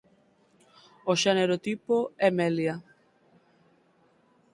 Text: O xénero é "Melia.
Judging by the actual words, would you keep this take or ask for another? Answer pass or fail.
fail